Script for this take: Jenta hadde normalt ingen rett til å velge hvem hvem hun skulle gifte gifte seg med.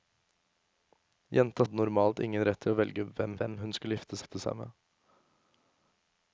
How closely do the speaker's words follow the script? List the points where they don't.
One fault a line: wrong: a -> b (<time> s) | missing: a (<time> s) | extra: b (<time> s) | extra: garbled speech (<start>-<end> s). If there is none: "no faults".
no faults